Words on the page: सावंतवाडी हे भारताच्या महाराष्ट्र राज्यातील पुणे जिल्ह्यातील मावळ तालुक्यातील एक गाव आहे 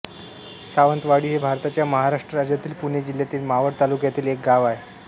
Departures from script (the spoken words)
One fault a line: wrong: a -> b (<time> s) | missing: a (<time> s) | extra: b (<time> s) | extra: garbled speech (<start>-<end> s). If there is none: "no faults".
no faults